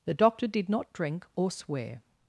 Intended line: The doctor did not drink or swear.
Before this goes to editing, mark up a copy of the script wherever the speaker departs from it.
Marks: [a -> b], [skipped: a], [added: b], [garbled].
The doctor did not drink or swear.